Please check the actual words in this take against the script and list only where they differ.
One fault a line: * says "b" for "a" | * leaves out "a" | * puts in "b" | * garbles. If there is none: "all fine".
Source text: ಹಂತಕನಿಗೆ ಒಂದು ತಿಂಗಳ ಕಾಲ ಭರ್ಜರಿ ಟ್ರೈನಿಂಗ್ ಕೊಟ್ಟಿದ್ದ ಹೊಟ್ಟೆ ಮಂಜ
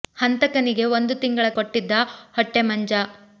* leaves out "ಕಾಲ ಭರ್ಜರಿ ಟ್ರೈನಿಂಗ್"